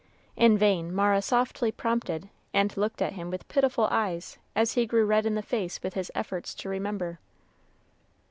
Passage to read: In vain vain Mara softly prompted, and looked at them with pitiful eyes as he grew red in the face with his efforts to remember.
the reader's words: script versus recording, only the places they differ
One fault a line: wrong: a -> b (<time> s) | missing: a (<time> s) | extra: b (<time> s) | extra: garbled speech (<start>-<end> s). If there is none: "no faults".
missing: vain (0.9 s)
wrong: them -> him (3.1 s)